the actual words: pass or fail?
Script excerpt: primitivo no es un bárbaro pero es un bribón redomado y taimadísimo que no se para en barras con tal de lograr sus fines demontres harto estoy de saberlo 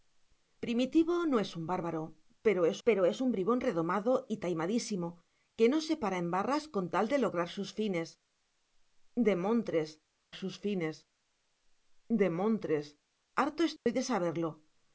fail